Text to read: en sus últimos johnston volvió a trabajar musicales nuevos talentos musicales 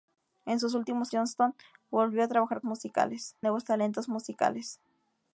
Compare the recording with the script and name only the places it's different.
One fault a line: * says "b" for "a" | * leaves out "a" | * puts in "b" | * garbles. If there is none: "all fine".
all fine